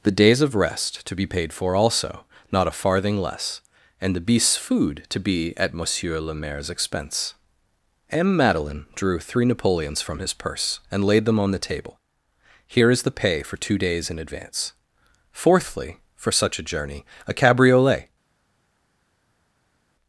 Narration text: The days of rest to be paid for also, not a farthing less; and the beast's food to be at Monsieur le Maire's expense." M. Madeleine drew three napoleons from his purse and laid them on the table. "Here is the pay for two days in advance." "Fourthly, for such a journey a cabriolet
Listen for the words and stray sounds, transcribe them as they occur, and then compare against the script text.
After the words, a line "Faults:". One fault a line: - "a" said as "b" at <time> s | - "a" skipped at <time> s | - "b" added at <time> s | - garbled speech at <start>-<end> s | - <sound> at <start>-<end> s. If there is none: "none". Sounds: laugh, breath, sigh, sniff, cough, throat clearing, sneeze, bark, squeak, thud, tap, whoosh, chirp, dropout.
The days of rest to be paid for also, not a farthing less; and the beast's food to be at Monsieur le Maire's expense." M. Madeleine drew three napoleons from his purse and laid them on the table. "Here is the pay for two days in advance." "Fourthly, for such a journey a cabriolet
Faults:
none